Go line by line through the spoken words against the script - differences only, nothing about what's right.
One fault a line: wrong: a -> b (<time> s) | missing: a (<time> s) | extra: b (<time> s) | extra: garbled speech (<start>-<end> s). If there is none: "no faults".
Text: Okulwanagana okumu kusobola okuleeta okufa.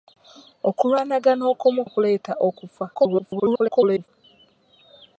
missing: kusobola (1.8 s)
extra: garbled speech (2.9-4.1 s)